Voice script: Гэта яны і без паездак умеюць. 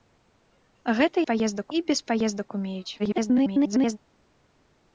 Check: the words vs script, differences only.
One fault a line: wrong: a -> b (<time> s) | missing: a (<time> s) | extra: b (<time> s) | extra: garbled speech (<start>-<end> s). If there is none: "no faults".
wrong: яны -> паездак (1.3 s)
extra: garbled speech (3.0-4.0 s)